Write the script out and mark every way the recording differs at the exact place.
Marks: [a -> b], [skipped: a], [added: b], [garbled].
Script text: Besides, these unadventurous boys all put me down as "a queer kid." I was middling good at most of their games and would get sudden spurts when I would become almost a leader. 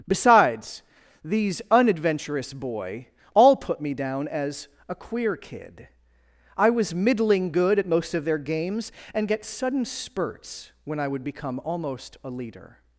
Besides, these unadventurous [boys -> boy] all put me down as "a queer kid." I was middling good at most of their games and [skipped: would] get sudden spurts when I would become almost a leader.